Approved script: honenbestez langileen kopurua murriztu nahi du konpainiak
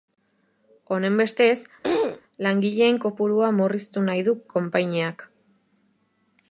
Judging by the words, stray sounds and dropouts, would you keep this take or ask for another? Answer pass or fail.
fail